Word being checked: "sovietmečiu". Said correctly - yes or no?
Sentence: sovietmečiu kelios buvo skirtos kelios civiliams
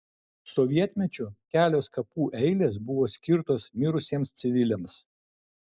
yes